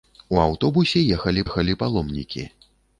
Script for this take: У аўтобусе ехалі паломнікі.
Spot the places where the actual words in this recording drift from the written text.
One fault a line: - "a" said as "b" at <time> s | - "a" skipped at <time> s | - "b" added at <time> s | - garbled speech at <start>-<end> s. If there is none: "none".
- "ехалі" added at 1.5 s